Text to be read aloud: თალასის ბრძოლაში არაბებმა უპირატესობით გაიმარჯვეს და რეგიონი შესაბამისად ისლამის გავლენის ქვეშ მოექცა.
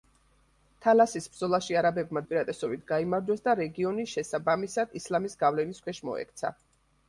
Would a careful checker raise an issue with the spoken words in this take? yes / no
no